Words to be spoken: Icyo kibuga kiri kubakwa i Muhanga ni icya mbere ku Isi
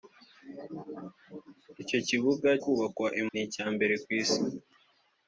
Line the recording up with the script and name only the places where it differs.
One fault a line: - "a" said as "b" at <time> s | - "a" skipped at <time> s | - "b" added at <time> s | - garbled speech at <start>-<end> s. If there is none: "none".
- "kiri" skipped at 2.5 s
- "Muhanga" skipped at 3.2 s